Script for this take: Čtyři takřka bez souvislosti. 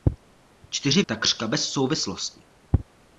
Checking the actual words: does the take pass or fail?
pass